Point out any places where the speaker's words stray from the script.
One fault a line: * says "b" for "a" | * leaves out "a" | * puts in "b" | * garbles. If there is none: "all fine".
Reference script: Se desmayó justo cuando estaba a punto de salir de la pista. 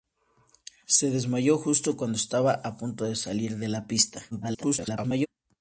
* garbles